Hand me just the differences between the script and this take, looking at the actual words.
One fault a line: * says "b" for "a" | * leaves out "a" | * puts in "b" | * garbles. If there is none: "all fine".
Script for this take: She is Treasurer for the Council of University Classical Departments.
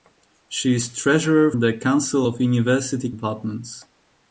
* leaves out "for"
* leaves out "Classical"